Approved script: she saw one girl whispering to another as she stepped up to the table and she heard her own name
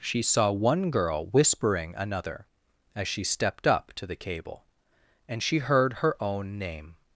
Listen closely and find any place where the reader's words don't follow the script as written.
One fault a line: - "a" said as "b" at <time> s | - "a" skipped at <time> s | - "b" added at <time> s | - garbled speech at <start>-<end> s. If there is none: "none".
- "to" skipped at 1.9 s
- "table" said as "cable" at 4.2 s